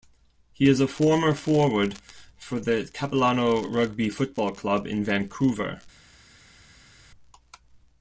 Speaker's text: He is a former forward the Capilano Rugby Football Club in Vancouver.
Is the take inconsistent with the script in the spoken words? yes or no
yes